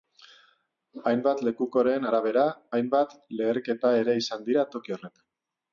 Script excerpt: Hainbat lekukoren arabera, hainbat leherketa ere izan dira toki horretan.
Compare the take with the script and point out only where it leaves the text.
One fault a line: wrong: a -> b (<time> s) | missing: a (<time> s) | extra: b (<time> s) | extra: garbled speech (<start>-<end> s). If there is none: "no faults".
no faults